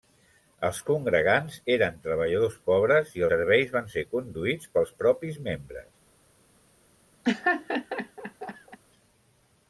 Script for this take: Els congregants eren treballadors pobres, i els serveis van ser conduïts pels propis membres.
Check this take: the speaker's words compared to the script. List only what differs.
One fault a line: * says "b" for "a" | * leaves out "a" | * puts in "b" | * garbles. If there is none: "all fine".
* leaves out "els"